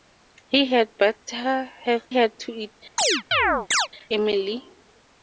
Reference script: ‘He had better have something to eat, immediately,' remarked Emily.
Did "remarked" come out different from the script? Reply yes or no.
yes